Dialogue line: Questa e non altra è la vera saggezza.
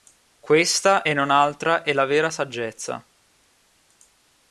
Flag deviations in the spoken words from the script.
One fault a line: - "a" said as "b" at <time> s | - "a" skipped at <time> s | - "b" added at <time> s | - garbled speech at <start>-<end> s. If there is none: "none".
none